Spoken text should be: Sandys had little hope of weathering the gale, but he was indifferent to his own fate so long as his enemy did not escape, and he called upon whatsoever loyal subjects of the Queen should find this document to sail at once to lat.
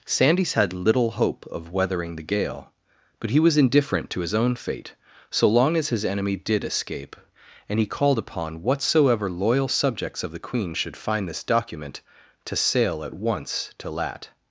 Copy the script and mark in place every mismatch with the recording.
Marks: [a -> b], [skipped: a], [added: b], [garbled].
Sandys had little hope of weathering the gale, but he was indifferent to his own fate so long as his enemy did [skipped: not] escape, and he called upon whatsoever loyal subjects of the Queen should find this document to sail at once to lat.